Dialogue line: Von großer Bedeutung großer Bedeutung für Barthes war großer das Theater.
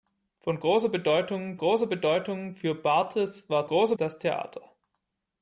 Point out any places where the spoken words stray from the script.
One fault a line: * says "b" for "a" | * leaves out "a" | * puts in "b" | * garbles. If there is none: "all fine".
all fine